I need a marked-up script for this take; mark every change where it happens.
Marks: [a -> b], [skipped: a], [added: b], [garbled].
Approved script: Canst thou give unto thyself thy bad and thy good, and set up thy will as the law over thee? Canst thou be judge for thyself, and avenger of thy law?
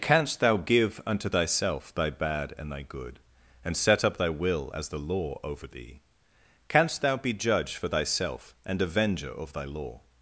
Canst thou give unto thyself thy bad and thy good, and set up thy will as the law over thee? Canst thou be judge for thyself, and avenger of thy law?